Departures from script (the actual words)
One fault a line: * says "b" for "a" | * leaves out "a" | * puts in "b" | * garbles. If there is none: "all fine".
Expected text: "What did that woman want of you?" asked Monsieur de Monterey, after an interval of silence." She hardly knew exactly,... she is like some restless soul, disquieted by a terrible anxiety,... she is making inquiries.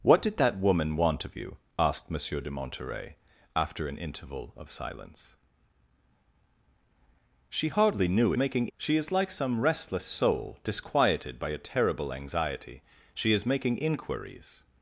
* says "making" for "exactly"